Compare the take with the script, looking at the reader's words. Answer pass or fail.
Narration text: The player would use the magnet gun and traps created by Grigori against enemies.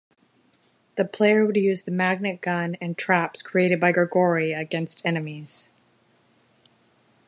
pass